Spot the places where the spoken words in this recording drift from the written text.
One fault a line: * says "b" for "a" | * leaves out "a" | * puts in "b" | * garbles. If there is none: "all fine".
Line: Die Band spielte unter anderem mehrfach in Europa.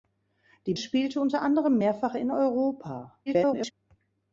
* leaves out "Band"
* garbles